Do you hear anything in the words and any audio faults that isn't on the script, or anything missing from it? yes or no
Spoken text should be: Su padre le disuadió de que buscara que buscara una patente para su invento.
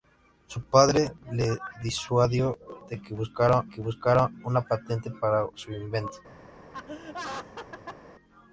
yes